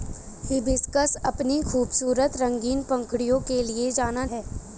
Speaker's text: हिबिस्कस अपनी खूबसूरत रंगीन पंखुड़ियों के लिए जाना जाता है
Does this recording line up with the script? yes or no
no